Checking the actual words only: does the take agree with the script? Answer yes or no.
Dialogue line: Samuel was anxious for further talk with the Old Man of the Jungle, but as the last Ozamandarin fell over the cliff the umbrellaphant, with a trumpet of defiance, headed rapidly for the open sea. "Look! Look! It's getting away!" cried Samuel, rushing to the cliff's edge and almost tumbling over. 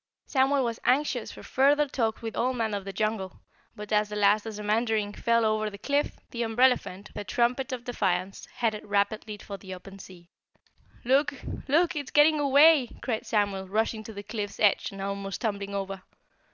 no